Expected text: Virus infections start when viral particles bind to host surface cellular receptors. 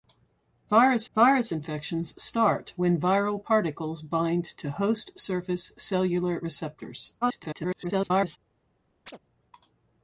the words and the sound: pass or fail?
fail